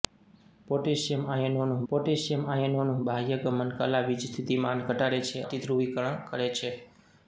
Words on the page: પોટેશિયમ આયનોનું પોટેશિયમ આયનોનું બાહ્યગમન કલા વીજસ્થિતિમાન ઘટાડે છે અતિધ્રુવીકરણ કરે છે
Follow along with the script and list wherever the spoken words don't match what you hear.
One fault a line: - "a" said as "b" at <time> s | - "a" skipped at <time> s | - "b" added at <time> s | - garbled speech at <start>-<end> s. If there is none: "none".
none